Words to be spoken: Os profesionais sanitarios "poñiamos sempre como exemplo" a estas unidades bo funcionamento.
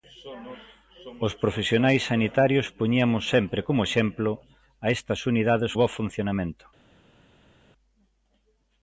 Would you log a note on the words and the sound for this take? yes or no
no